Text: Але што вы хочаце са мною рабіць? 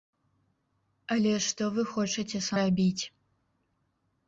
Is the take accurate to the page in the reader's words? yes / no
no